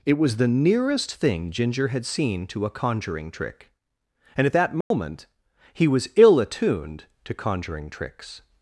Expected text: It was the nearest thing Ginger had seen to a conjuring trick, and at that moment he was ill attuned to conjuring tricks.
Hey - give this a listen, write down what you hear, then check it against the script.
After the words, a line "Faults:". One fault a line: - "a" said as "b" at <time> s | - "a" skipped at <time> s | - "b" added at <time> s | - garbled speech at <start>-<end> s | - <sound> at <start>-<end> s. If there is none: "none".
It was the nearest thing Ginger had seen to a conjuring trick, and at that moment he was ill attuned to conjuring tricks.
Faults:
- dropout at 4.8-4.9 s